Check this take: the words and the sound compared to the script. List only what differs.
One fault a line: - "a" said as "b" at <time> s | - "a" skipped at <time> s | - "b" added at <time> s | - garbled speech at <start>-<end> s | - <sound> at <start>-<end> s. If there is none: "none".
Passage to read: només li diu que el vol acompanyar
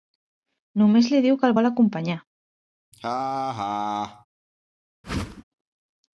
- laugh at 2.9-4.3 s
- whoosh at 5.0-5.4 s